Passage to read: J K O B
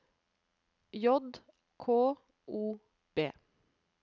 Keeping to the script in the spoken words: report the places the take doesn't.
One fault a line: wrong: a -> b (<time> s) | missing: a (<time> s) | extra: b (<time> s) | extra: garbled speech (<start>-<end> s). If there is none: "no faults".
no faults